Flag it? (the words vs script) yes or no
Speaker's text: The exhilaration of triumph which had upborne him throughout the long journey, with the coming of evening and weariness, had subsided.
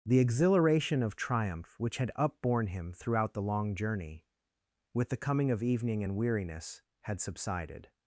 no